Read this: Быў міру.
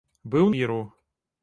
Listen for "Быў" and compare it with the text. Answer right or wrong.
right